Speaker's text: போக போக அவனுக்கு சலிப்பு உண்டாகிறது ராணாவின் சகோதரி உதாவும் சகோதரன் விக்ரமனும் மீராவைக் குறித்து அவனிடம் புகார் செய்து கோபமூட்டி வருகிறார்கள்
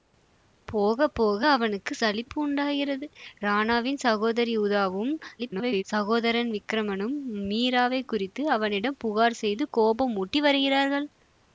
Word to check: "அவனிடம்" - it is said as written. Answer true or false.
true